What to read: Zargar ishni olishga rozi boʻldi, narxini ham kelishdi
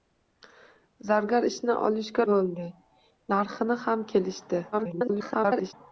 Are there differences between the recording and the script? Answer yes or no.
yes